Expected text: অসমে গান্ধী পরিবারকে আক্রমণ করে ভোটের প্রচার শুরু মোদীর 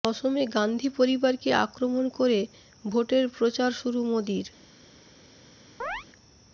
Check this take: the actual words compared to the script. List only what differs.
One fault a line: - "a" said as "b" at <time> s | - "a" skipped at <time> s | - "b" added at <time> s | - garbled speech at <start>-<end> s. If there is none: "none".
none